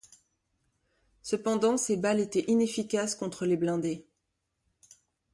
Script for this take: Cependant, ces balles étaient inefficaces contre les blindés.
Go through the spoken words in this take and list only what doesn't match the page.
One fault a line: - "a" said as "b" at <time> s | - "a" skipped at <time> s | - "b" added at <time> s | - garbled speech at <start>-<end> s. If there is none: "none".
none